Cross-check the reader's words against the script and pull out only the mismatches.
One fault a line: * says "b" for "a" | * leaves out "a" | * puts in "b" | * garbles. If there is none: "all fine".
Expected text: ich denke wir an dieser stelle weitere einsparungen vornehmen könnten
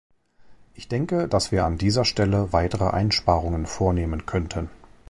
* puts in "dass"